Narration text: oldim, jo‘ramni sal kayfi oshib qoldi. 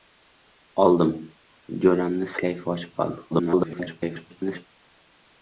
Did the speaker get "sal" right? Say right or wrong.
wrong